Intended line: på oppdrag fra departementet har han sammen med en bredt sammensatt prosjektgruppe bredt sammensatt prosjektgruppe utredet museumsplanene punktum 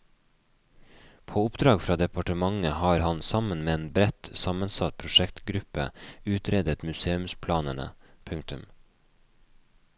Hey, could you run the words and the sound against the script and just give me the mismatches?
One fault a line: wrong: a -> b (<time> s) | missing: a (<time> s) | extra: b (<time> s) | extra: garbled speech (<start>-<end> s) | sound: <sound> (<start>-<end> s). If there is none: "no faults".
missing: bredt sammensatt prosjektgruppe (5.9 s)